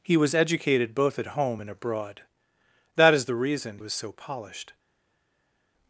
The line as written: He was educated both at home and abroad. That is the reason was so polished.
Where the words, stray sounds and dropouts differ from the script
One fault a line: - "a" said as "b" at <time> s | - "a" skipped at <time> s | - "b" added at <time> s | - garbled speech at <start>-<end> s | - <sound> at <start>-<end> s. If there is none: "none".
none